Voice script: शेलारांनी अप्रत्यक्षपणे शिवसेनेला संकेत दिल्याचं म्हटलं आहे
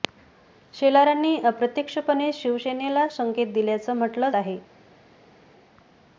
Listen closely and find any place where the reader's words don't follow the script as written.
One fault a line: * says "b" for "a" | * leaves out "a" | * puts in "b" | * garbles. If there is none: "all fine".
all fine